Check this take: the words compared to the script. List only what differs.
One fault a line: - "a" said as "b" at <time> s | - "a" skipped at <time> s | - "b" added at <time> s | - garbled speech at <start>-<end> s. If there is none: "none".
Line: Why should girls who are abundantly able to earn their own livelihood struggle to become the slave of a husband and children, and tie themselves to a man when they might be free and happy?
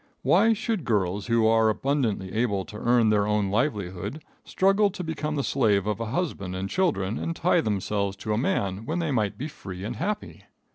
none